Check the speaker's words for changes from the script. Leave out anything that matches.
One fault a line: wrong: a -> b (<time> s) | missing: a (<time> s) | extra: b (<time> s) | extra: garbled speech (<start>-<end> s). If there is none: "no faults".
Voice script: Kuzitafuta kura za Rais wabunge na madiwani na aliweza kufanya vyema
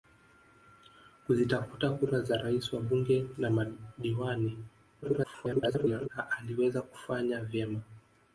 extra: garbled speech (5.0-6.1 s)